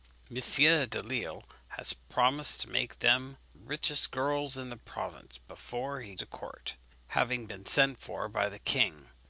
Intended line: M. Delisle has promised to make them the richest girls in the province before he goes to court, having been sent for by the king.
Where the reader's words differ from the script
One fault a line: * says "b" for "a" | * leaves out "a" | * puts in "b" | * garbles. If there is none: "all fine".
* leaves out "the"
* leaves out "goes"